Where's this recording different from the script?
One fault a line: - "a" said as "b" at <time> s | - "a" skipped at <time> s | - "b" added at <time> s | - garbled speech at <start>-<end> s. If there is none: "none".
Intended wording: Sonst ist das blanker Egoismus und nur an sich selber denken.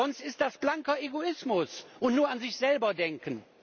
none